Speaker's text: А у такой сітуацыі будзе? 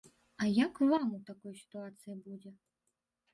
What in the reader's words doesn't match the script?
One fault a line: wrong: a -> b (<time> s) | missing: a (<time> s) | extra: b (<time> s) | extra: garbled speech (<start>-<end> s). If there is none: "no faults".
extra: як вам (0.5 s)